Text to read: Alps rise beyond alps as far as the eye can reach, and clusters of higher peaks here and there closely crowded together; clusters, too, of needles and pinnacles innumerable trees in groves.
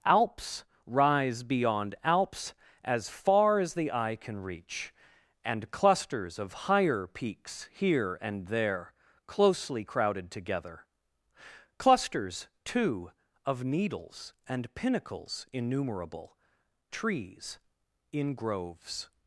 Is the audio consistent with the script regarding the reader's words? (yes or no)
yes